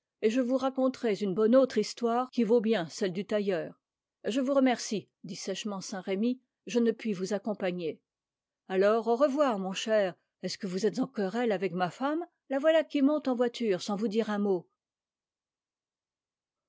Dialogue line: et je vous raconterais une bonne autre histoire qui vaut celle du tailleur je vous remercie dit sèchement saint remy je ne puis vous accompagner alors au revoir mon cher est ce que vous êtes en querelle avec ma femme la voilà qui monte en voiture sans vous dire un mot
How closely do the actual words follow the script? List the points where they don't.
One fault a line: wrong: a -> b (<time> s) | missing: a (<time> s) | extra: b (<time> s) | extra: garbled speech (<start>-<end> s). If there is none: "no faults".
extra: bien (2.6 s)